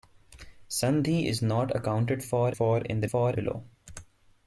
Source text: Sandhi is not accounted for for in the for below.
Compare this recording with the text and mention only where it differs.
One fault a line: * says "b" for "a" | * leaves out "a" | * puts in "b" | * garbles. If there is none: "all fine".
all fine